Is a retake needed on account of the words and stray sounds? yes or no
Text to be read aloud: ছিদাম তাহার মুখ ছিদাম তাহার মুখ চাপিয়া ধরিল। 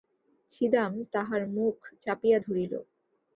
yes